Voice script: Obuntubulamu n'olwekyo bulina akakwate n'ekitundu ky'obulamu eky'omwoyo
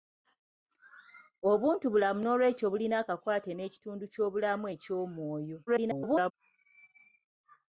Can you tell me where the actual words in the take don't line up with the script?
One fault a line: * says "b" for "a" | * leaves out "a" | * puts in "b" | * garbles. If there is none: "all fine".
* garbles